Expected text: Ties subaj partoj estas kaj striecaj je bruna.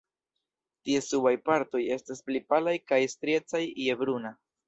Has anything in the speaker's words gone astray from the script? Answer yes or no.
yes